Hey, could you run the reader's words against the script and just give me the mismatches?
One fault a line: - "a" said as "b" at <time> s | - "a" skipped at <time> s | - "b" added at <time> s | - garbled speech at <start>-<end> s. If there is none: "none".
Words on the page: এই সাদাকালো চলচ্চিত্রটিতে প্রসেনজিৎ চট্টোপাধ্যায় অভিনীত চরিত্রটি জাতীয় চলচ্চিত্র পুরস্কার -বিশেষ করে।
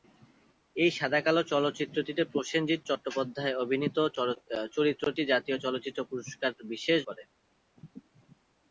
none